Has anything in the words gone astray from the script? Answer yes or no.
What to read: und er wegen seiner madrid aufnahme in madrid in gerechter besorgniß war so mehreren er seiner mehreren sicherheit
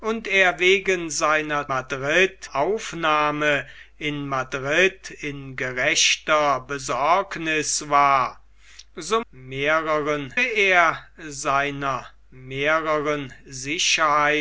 no